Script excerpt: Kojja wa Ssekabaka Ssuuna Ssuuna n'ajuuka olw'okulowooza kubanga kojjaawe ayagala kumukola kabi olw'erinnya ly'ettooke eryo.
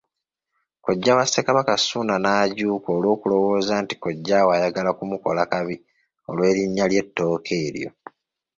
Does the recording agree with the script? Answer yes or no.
no